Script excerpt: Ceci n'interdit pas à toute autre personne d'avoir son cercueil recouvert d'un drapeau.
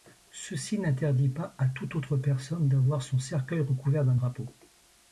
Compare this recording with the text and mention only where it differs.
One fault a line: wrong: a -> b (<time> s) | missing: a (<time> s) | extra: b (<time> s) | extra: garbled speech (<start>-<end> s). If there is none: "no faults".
no faults